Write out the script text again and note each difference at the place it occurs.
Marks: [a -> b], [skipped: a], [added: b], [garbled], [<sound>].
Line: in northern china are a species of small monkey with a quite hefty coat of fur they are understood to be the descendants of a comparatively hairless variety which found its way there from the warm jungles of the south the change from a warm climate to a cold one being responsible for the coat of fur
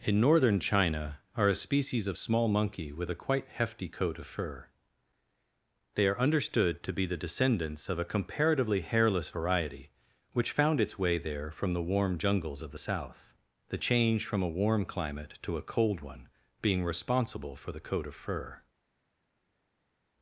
in northern china are a species of small monkey with a quite hefty coat of fur they are understood to be the descendants of a comparatively hairless variety which found its way there from the warm jungles of the south the change from a warm climate to a cold one being responsible for the coat of fur